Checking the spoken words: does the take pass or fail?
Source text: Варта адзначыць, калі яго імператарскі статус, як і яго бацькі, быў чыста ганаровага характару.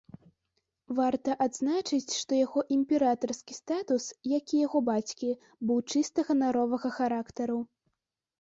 fail